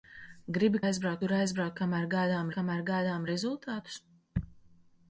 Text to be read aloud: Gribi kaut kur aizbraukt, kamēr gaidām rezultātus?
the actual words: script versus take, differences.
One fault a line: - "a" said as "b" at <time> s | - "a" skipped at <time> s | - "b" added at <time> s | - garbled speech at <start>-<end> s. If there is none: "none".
- "kaut" said as "aizbraukt" at 0.8 s
- "kamēr gaidām" added at 2.6 s